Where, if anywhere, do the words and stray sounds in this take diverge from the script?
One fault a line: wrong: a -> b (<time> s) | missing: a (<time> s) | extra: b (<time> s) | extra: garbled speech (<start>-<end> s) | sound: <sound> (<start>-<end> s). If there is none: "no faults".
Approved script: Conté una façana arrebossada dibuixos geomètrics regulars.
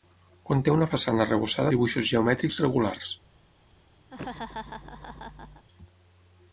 sound: laugh (4.1-5.7 s)